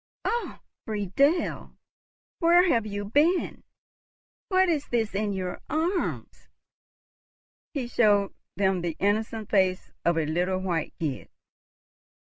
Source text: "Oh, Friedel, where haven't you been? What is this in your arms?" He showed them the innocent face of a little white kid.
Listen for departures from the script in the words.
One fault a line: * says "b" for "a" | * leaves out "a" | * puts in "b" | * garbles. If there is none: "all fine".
* says "have" for "haven't"